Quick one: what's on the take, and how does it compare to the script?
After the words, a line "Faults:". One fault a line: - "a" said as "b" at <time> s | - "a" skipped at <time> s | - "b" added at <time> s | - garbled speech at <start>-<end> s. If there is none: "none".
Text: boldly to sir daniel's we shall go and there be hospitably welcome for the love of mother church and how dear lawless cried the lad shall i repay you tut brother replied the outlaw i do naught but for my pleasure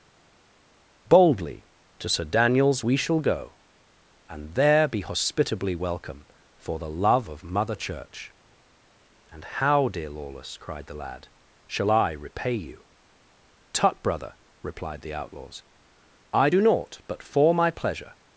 boldly to sir daniel's we shall go and there be hospitably welcome for the love of mother church and how dear lawless cried the lad shall i repay you tut brother replied the outlaws i do naught but for my pleasure
Faults:
- "outlaw" said as "outlaws" at 15.1 s